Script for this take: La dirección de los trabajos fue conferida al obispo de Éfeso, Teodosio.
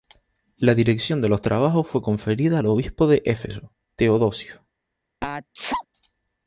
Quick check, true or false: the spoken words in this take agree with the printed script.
true